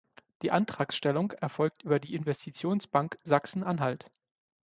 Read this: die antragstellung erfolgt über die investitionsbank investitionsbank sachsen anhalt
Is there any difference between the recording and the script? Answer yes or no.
yes